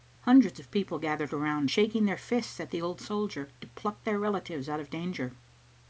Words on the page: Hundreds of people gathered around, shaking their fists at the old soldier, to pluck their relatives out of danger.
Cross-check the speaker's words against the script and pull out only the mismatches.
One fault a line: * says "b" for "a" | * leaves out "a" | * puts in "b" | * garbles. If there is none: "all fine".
all fine